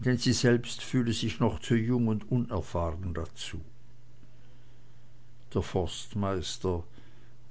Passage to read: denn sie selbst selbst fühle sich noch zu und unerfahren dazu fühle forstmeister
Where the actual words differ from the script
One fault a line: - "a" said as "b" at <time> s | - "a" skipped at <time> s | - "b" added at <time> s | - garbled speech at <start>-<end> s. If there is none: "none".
- "selbst" skipped at 0.8 s
- "jung" added at 1.7 s
- "fühle" said as "der" at 5.5 s